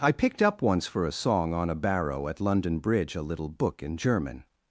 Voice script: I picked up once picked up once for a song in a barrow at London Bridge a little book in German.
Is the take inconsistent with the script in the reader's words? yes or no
yes